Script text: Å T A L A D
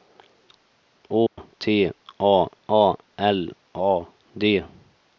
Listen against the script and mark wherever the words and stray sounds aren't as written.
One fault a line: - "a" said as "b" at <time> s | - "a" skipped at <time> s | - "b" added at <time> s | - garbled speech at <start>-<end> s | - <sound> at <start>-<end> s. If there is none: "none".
- dropout at 1.3-1.4 s
- "A" added at 2.7 s